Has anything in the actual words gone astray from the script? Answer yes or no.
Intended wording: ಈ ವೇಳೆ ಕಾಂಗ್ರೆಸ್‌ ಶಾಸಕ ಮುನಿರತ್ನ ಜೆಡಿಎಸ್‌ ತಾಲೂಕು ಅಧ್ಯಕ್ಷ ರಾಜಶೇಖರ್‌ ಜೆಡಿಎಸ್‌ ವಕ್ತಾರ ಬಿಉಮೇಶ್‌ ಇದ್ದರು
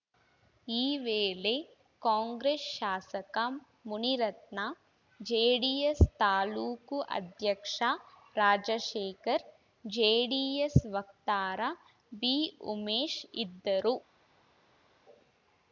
no